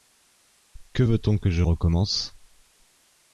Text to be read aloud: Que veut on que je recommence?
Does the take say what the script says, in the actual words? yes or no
yes